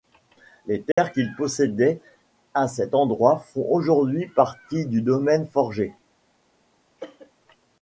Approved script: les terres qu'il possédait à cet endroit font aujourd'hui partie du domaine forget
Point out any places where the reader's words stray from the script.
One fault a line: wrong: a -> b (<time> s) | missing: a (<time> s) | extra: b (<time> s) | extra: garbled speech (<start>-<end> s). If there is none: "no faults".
no faults